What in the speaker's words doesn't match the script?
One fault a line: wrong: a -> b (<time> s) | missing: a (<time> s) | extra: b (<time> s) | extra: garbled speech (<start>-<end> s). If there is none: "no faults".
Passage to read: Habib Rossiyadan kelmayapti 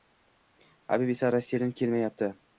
extra: esa (1.2 s)